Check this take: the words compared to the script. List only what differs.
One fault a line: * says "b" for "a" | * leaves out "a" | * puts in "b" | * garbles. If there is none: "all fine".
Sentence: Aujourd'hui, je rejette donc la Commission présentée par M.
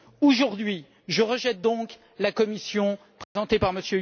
all fine